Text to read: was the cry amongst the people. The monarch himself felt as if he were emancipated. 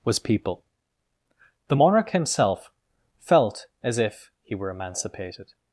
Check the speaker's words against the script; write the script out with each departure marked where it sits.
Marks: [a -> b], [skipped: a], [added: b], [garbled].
was [skipped: the cry amongst the] people. The monarch himself felt as if he were emancipated.